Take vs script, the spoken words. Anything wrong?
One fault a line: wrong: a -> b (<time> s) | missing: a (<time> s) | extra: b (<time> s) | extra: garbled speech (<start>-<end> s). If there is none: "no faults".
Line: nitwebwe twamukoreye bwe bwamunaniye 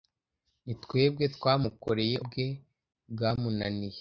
no faults